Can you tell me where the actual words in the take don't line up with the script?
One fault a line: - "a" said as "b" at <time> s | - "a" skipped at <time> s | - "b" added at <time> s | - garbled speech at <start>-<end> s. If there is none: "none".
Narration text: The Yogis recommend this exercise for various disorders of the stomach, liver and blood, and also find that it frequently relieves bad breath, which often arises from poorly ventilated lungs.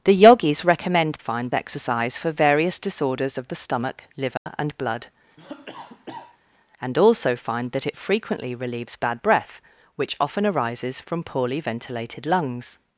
- "this" said as "find" at 1.2 s